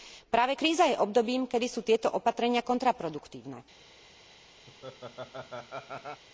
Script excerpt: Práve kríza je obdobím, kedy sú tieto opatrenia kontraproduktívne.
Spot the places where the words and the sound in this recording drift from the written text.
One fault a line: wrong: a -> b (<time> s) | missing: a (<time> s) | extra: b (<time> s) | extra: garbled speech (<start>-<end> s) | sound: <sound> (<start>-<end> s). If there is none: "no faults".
sound: laugh (4.7-6.2 s)